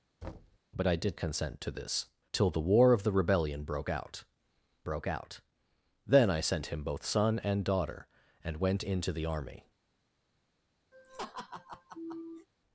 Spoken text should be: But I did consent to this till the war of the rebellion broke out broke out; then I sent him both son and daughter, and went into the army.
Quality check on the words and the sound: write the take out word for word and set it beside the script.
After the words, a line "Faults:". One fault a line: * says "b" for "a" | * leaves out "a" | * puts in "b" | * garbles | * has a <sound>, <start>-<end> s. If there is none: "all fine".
But I did consent to this till the war of the rebellion broke out broke out; then I sent him both son and daughter, and went into the army.
Faults:
* has a thud, 0.2-0.6 s
* has a laugh, 10.9-12.5 s